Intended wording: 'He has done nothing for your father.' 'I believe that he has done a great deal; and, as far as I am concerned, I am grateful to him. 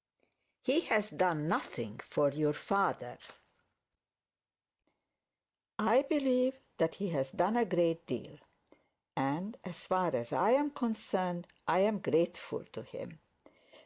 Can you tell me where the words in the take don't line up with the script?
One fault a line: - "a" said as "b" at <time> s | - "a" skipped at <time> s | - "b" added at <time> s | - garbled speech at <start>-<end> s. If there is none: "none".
none